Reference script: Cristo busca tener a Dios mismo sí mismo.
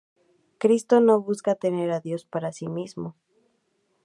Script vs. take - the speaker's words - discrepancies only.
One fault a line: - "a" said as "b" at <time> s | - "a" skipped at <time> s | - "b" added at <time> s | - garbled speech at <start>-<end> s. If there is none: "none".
- "no" added at 1.0 s
- "mismo" said as "para" at 2.2 s